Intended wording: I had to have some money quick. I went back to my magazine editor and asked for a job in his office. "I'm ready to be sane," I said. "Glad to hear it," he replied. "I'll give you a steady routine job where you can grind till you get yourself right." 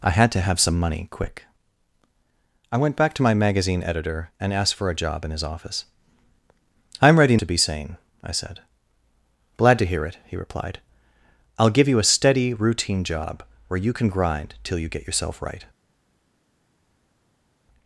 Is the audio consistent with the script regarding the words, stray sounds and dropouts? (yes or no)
yes